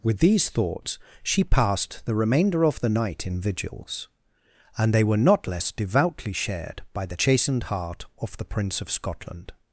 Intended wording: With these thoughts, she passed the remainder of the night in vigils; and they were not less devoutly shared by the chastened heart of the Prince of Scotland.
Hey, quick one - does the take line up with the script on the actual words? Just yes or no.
yes